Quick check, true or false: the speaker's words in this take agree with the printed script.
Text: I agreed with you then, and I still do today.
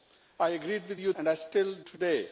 false